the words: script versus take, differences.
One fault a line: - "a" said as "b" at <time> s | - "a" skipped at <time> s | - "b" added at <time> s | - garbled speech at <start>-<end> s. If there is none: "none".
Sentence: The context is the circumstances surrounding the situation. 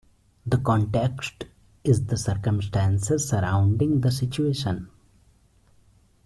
none